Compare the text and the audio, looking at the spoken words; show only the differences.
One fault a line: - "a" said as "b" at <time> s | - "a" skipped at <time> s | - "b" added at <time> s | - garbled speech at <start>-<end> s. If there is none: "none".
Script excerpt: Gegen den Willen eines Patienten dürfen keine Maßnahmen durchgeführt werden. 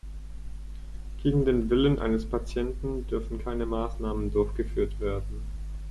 none